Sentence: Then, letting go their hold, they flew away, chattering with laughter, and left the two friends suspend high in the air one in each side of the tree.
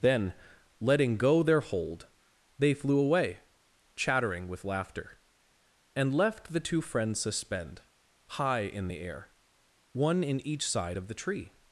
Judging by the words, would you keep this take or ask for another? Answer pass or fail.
pass